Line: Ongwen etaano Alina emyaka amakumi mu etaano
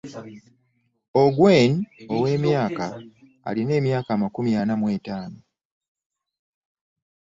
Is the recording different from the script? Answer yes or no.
yes